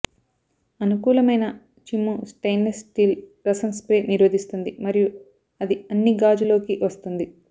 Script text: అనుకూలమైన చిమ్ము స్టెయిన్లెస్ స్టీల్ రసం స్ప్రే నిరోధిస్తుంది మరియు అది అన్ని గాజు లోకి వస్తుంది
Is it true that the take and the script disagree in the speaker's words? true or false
false